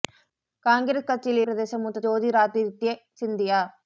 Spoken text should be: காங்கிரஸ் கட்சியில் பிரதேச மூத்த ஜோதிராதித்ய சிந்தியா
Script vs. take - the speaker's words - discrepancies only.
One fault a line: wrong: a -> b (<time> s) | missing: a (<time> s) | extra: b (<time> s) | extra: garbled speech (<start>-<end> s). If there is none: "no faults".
no faults